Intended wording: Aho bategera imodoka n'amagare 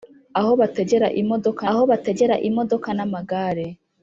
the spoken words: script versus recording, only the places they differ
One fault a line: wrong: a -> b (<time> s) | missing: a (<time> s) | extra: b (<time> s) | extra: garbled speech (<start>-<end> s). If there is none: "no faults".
extra: aho bategera imodoka (1.7 s)